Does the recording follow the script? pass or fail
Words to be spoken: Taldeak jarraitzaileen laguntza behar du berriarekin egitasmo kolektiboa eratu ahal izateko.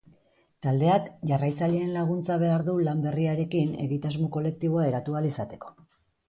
fail